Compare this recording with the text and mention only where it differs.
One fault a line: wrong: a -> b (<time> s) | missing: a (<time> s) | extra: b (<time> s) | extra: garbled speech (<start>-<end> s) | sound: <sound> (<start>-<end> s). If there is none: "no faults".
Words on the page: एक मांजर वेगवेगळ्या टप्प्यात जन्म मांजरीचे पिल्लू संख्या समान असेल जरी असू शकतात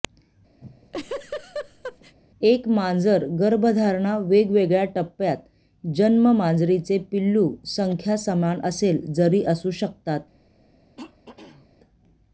sound: laugh (0.6-2.2 s)
extra: गर्भधारणा (3.4 s)
sound: throat clearing (11.0-11.7 s)